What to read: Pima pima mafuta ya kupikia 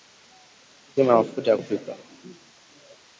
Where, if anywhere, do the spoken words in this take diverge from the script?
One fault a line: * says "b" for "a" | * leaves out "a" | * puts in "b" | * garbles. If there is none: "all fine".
* leaves out "pima"